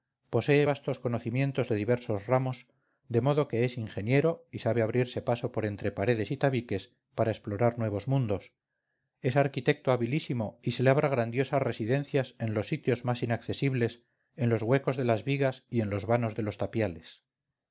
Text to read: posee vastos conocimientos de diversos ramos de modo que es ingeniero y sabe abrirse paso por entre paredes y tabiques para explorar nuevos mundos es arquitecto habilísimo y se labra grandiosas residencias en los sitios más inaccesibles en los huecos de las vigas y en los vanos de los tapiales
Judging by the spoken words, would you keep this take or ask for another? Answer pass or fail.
pass